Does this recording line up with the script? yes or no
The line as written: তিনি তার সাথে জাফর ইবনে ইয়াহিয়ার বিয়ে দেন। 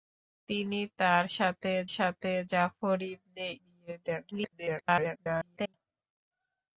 no